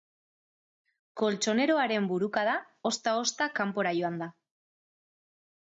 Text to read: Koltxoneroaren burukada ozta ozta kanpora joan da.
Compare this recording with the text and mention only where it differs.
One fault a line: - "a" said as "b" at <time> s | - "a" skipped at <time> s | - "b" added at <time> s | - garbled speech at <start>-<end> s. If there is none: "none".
none